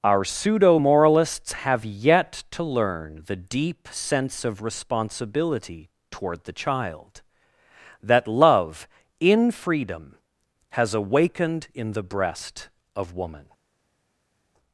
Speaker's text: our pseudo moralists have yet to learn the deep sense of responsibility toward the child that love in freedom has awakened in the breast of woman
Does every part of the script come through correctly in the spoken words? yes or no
yes